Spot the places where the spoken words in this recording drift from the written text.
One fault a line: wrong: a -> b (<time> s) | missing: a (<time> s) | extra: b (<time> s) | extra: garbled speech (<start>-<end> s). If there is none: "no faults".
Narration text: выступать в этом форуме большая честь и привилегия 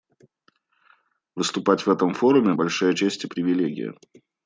no faults